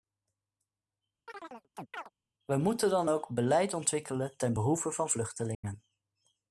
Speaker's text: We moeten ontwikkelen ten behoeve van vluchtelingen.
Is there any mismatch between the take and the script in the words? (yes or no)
yes